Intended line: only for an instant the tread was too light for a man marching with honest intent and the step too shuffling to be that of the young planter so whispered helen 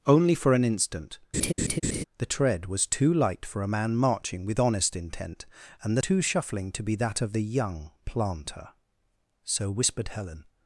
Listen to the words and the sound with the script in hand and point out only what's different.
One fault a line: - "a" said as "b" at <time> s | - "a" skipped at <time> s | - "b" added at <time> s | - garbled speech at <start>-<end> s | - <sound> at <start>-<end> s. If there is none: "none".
- laugh at 1.3-2.0 s
- "step" skipped at 6.0 s